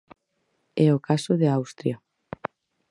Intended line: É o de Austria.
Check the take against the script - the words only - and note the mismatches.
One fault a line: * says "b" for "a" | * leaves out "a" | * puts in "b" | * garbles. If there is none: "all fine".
* puts in "caso"